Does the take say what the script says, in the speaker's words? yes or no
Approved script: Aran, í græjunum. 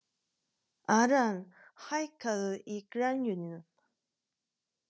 no